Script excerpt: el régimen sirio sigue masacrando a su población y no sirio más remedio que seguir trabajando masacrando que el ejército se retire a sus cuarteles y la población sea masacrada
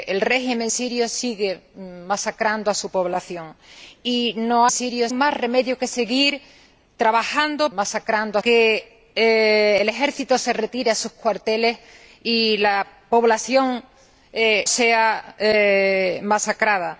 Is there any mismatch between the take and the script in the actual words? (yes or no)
no